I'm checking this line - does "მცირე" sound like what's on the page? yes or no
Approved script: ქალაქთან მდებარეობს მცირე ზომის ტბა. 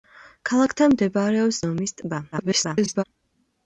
no